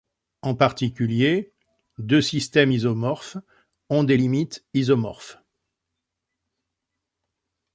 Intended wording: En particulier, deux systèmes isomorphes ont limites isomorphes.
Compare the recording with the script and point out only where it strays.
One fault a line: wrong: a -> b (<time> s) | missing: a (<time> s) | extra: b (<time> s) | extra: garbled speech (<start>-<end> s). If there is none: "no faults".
extra: des (4.0 s)